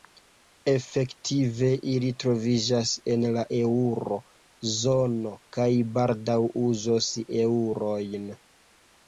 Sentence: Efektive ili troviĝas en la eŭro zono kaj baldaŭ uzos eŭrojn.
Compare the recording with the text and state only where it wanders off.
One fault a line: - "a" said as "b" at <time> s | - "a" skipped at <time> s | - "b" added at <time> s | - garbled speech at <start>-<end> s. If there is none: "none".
none